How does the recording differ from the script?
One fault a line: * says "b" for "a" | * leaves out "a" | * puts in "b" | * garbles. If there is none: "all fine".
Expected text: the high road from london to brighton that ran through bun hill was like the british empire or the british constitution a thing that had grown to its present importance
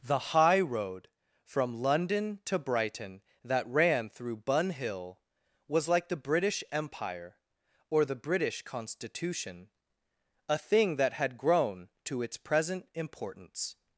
all fine